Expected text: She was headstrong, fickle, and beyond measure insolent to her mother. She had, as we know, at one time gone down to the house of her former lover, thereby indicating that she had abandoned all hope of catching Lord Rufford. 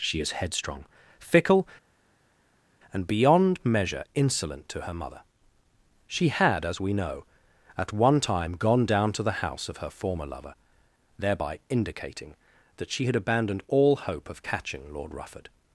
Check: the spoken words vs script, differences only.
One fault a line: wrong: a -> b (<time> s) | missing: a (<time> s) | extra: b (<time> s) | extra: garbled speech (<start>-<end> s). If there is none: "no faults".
wrong: was -> is (0.2 s)